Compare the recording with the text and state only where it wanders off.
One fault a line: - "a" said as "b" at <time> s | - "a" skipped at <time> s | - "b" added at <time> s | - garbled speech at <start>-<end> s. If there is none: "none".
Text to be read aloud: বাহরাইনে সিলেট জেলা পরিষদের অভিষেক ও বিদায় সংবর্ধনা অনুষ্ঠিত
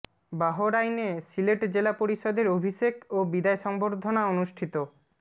none